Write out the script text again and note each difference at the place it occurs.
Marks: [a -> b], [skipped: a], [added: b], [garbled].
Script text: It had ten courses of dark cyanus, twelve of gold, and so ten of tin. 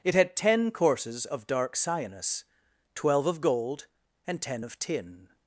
It had ten courses of dark cyanus, twelve of gold, and [skipped: so] ten of tin.